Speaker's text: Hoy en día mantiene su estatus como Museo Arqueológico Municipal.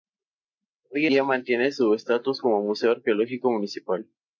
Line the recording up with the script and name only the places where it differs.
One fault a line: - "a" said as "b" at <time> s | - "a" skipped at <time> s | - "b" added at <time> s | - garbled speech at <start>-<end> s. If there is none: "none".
- "en" skipped at 1.1 s